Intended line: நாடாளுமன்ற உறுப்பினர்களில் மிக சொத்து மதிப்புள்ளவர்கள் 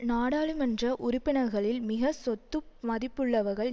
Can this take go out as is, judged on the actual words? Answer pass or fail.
pass